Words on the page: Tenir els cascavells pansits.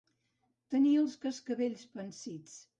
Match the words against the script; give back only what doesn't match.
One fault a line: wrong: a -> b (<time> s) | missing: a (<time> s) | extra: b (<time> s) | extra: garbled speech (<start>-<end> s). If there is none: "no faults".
no faults